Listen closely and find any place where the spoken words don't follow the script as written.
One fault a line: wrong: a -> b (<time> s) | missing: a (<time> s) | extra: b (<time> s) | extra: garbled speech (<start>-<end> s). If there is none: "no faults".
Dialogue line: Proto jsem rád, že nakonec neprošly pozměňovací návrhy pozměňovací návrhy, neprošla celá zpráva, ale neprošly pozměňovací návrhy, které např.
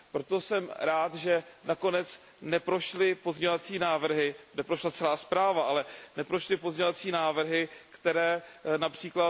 missing: pozměňovací návrhy (4.3 s)